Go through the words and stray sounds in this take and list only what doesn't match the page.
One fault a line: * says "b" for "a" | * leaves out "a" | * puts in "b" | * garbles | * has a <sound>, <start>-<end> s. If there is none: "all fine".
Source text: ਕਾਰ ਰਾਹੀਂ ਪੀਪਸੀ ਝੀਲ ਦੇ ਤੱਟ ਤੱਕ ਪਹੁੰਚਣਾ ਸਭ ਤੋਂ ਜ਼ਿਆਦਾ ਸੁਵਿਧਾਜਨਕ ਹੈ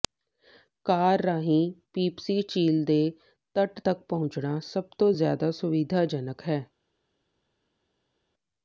all fine